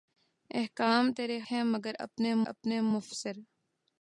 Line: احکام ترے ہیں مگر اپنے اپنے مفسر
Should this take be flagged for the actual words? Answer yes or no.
no